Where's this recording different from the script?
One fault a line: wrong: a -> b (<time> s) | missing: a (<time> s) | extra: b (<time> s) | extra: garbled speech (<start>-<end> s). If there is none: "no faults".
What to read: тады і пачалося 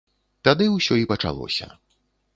extra: ўсё (0.8 s)